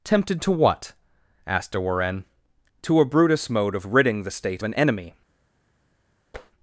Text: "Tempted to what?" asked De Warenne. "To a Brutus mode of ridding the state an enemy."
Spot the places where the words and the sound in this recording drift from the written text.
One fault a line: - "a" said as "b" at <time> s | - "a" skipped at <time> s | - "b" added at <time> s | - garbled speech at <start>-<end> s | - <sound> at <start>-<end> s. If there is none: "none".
- tap at 6.3-6.5 s